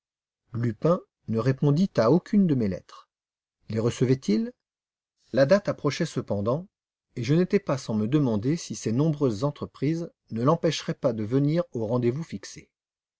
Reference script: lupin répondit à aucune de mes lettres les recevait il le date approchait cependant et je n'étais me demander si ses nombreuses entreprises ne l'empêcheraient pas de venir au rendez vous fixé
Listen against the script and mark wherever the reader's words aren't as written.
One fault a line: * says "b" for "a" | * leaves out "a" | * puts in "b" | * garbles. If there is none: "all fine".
* puts in "ne"
* says "la" for "le"
* puts in "pas sans"